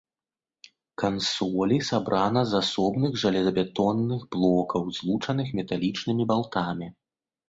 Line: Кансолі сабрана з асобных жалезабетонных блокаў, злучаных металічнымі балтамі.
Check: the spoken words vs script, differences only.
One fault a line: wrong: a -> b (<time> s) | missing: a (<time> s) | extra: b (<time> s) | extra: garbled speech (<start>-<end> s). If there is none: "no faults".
no faults